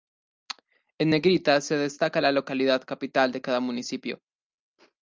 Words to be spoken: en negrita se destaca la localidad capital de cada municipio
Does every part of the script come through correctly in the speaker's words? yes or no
yes